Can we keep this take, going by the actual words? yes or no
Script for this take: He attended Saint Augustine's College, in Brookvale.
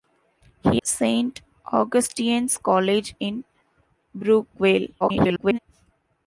no